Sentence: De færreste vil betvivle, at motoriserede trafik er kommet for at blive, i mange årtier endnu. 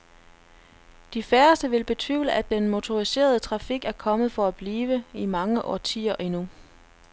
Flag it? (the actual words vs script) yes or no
yes